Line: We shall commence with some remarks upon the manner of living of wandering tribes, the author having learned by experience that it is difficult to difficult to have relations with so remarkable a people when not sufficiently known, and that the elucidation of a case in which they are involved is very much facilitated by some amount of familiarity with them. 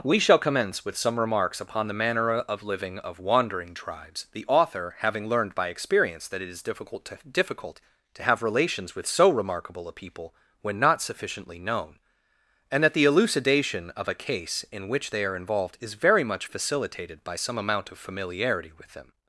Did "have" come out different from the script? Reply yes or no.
no